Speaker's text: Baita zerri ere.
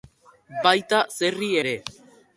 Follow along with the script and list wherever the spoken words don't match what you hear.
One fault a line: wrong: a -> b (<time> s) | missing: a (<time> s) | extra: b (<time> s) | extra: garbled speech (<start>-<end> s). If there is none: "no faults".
no faults